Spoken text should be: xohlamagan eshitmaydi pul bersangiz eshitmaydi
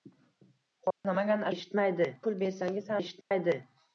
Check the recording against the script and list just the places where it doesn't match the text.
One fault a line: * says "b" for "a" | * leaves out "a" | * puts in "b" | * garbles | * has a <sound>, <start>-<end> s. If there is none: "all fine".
* has a dropout, 0.9-1.0 s
* has a dropout, 3.2-3.3 s